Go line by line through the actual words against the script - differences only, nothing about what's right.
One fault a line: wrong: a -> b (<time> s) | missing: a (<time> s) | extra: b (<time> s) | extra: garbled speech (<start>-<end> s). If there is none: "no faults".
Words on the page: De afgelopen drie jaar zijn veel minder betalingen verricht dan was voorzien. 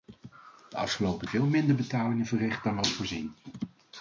missing: drie jaar zijn (1.3 s)